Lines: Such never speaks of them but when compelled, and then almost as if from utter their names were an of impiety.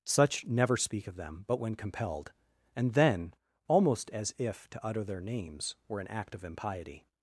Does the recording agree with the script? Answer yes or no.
no